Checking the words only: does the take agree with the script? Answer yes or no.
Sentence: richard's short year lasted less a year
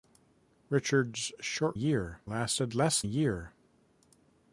yes